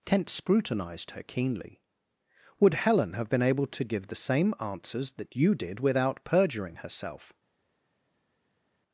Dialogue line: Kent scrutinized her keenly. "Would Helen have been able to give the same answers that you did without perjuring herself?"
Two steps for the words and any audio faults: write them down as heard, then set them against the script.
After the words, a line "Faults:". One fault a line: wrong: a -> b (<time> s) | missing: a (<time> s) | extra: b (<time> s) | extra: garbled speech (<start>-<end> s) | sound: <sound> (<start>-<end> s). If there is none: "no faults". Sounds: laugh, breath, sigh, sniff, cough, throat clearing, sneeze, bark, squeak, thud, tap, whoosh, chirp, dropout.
Kent scrutinized her keenly. "Would Helen have been able to give the same answers that you did without perjuring herself?"
Faults:
no faults